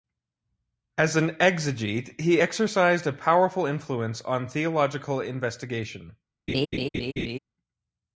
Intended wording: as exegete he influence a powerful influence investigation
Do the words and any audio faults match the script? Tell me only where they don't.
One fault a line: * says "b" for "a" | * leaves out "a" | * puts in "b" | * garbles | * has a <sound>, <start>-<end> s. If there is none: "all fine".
* puts in "an"
* says "exercised" for "influence"
* puts in "on theological"
* has a laugh, 6.5-7.4 s